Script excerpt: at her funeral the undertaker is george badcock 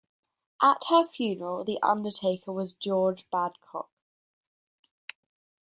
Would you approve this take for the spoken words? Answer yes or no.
no